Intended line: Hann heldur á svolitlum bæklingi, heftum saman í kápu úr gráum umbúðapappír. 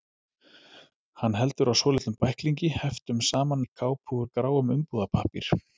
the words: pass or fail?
pass